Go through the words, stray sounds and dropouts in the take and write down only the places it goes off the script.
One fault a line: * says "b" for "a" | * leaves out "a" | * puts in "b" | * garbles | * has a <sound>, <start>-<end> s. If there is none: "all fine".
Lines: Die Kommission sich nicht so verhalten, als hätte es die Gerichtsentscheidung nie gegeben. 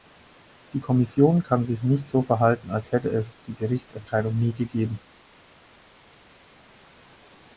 * puts in "kann"